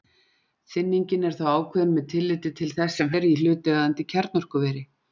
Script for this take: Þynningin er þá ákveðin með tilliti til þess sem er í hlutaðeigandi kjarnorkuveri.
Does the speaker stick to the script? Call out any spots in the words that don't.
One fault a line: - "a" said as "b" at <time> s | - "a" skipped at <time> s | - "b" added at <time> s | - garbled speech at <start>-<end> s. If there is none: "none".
none